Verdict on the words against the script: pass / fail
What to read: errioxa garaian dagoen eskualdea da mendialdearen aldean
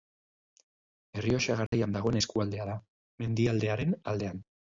pass